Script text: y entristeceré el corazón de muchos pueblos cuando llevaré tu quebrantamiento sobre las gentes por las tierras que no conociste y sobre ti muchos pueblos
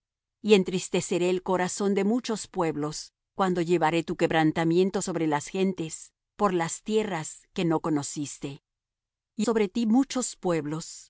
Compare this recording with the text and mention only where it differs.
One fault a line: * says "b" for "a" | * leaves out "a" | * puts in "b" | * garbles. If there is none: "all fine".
all fine